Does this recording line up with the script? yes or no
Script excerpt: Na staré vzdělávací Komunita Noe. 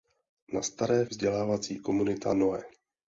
yes